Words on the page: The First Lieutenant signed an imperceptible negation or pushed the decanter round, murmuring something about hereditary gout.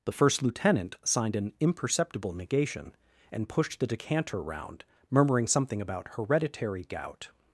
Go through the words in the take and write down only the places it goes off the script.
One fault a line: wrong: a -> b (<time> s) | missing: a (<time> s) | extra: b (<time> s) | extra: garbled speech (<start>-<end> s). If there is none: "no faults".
wrong: or -> and (3.3 s)